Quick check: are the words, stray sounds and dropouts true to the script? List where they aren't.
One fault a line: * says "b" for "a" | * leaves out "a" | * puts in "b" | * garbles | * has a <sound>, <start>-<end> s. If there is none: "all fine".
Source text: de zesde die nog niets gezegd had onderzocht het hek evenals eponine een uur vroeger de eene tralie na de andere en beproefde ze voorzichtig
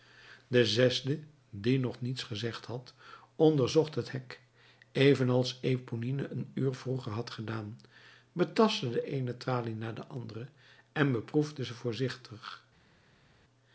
* puts in "had gedaan betastte"